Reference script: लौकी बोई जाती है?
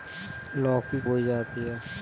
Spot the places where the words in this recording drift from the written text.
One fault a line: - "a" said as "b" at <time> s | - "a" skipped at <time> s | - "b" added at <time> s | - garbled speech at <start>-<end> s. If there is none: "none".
none